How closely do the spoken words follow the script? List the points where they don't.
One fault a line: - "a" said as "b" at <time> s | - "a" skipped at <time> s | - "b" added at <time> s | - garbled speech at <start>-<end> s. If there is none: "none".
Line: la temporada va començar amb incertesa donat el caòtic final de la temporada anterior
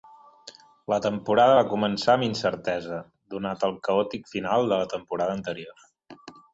none